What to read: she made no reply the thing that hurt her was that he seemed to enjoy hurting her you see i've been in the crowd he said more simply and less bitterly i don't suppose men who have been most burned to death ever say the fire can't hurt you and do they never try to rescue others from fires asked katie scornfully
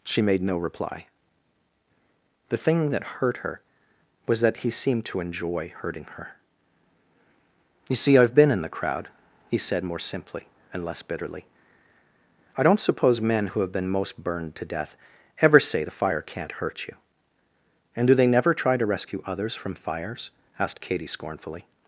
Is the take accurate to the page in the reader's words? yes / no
yes